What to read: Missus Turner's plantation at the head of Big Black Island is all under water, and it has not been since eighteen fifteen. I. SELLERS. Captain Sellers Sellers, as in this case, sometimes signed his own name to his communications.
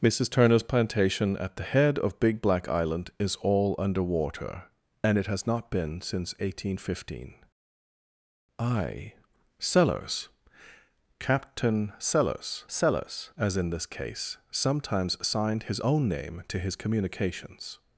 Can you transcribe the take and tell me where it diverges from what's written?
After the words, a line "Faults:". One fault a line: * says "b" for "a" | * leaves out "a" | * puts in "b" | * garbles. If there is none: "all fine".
Missus Turner's plantation at the head of Big Black Island is all under water, and it has not been since eighteen fifteen. I. SELLERS. Captain Sellers Sellers, as in this case, sometimes signed his own name to his communications.
Faults:
all fine